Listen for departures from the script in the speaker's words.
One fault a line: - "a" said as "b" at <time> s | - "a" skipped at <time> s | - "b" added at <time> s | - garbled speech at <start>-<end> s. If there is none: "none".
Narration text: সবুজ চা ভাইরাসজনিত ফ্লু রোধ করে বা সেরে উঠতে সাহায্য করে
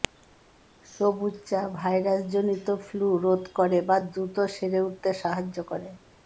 - "দ্রুত" added at 4.1 s